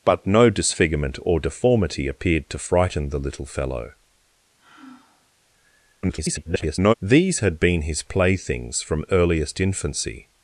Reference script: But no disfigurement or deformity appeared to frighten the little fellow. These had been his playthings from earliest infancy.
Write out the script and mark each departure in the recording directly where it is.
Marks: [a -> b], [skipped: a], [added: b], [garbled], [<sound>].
But no disfigurement or deformity appeared to frighten the little fellow. [sigh] [garbled] These had been his playthings from earliest infancy.